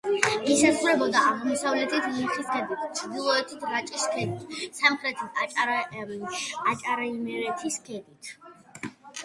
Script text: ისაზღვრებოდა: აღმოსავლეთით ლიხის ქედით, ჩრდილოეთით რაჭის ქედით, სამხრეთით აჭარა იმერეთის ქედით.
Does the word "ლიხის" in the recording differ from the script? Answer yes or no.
no